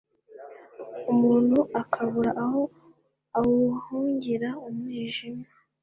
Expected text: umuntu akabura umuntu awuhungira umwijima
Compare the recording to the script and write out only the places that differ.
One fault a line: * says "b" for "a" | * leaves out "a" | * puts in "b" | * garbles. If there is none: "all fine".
* says "aho" for "umuntu"